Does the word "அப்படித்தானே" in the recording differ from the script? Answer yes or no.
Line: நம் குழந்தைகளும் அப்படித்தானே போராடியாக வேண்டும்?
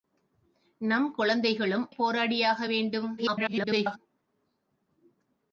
yes